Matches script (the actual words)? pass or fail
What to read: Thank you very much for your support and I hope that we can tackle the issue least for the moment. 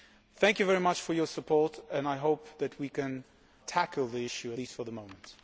pass